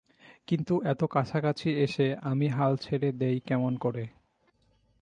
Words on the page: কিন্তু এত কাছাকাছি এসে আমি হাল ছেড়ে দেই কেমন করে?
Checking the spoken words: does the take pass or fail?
pass